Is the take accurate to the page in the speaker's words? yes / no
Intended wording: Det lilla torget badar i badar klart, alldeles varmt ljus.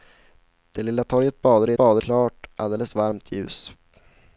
yes